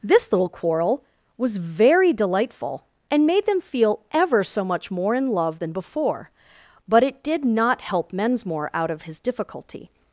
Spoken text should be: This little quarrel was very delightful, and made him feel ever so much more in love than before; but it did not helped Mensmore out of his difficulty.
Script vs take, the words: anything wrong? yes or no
yes